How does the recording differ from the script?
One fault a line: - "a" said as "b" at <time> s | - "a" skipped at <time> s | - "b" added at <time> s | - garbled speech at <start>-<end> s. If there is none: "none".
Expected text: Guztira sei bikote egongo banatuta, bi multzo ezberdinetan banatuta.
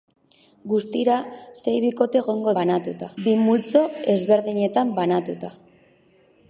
none